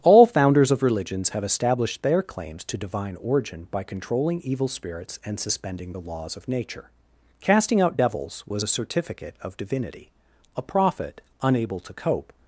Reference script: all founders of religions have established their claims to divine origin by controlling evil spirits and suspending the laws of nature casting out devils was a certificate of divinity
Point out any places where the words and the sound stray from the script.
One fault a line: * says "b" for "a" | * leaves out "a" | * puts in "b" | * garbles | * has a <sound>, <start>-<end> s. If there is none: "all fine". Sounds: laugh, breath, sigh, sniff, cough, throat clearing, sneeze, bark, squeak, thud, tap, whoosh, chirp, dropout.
* puts in "a prophet unable to cope"